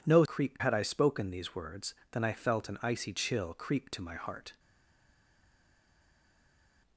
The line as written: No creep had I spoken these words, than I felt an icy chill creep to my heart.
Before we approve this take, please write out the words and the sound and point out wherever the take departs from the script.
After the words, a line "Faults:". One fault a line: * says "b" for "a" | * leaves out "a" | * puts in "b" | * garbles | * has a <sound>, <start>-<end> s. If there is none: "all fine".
No creep had I spoken these words, than I felt an icy chill creep to my heart.
Faults:
all fine